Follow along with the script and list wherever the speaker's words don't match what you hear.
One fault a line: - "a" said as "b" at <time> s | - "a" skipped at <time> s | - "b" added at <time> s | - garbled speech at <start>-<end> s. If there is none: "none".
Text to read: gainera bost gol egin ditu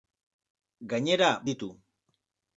- "bost gol egin" skipped at 1.3 s